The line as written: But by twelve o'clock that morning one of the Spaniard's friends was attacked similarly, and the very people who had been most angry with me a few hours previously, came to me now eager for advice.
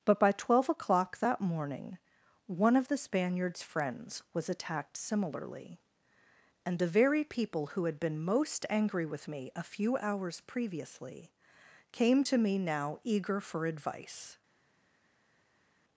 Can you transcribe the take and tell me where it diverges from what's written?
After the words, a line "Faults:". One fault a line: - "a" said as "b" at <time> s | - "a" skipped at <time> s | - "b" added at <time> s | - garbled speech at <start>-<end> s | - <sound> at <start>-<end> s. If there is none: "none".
But by twelve o'clock that morning one of the Spaniard's friends was attacked similarly, and the very people who had been most angry with me a few hours previously, came to me now eager for advice.
Faults:
none